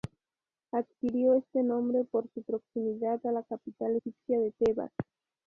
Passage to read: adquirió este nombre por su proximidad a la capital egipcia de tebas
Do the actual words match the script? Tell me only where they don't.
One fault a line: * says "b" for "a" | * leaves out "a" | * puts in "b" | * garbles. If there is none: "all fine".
all fine